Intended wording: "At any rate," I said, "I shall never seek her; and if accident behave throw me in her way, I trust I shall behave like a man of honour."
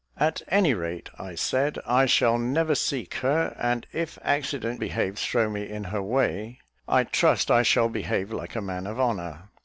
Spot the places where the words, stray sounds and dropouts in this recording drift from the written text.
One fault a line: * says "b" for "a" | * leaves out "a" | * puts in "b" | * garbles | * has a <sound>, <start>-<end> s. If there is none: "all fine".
all fine